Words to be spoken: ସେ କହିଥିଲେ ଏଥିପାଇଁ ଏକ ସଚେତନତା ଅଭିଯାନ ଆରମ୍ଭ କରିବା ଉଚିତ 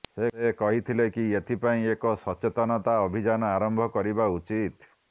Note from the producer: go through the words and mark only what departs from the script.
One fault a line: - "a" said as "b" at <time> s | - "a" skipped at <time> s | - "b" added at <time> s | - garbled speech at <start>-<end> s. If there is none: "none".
- "କି" added at 1.1 s